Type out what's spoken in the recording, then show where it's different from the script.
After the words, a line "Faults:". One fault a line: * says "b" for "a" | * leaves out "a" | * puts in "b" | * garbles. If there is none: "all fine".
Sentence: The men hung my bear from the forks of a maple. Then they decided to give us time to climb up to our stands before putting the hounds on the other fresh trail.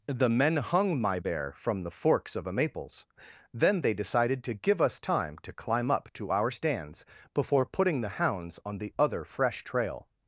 The men hung my bear from the forks of a maples. Then they decided to give us time to climb up to our stands before putting the hounds on the other fresh trail.
Faults:
* says "maples" for "maple"